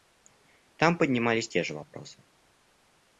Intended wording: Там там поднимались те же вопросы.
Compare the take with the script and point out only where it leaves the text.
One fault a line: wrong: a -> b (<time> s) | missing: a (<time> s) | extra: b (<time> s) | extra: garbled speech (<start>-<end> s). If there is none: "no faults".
missing: там (1.0 s)